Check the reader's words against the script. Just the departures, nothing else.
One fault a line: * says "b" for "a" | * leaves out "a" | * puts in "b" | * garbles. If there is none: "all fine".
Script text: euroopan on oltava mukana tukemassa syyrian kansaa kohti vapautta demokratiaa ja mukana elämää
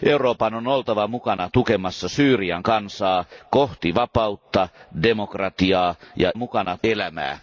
all fine